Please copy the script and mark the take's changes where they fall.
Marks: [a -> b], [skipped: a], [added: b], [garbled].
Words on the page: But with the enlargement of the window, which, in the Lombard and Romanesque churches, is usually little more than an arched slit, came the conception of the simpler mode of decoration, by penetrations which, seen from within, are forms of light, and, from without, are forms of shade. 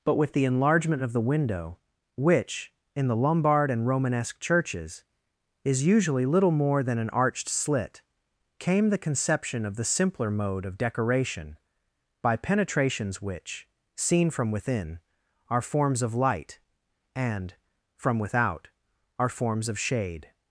But with the enlargement of the window, which, in the Lombard and Romanesque churches, is usually little more than an arched slit, came the conception of the simpler mode of decoration, by penetrations which, seen from within, are forms of light, and, from without, are forms of shade.